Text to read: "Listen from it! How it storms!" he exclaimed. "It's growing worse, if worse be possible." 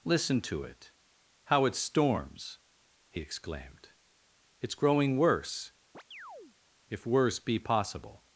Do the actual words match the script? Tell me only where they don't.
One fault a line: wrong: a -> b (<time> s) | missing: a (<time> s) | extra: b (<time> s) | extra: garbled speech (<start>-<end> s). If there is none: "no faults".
wrong: from -> to (0.4 s)